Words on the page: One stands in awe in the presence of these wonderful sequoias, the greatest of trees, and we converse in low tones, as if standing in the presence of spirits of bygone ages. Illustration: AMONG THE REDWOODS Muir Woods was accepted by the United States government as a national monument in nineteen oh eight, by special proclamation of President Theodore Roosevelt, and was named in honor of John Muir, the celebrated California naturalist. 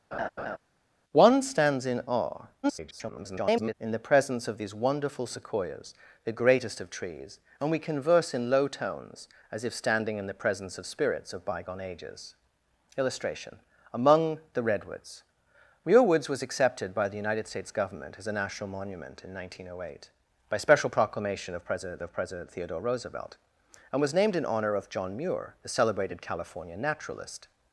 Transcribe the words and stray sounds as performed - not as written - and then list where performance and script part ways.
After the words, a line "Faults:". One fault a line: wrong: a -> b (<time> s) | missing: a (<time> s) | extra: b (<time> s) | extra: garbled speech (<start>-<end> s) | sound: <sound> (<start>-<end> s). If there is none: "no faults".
One stands in awe [garbled] in the presence of these wonderful sequoias, the greatest of trees, and we converse in low tones, as if standing in the presence of spirits of bygone ages. Illustration: AMONG THE REDWOODS Muir Woods was accepted by the United States government as a national monument in nineteen oh eight, by special proclamation of President of President Theodore Roosevelt, and was named in honor of John Muir, the celebrated California naturalist.
Faults:
sound: laugh (0.1-0.6 s)
extra: garbled speech (2.6-3.7 s)
extra: of President (22.0 s)